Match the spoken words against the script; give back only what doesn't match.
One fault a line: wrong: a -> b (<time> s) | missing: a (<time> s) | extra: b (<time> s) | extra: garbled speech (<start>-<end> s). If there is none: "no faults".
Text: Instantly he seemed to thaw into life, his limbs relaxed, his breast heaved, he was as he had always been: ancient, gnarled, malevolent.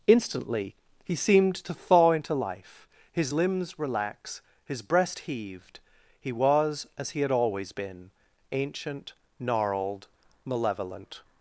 wrong: relaxed -> relax (3.8 s)